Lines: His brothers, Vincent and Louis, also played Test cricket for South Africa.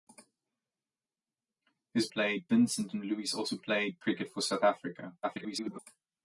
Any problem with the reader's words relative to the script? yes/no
yes